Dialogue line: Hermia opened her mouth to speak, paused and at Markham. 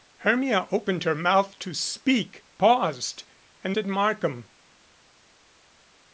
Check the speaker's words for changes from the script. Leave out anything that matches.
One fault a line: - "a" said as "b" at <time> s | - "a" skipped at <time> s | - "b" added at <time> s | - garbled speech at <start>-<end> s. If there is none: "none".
none